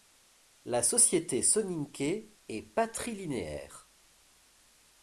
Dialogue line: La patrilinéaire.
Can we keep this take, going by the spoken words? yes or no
no